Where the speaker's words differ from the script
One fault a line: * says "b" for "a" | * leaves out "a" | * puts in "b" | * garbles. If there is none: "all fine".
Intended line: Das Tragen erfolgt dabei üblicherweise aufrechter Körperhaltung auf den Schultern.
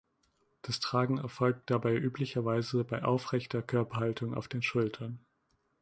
* puts in "bei"